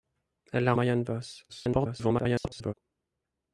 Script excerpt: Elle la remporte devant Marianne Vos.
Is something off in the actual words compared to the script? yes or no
yes